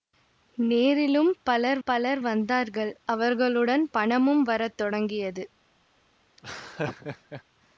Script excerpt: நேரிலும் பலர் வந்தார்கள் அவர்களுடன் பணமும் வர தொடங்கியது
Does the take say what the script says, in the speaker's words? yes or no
no